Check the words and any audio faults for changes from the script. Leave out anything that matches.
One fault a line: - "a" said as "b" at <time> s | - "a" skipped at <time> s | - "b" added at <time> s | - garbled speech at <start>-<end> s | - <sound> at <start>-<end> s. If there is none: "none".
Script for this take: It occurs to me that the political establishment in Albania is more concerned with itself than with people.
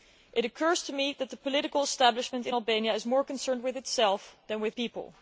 none